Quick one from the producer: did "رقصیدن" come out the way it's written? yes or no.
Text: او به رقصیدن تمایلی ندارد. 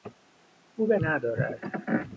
no